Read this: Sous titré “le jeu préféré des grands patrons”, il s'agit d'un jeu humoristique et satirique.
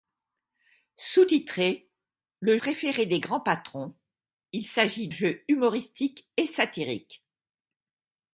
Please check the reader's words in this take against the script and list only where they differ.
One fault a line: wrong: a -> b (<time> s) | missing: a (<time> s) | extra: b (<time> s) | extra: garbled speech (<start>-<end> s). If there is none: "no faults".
missing: jeu (2.6 s)
missing: d'un (5.1 s)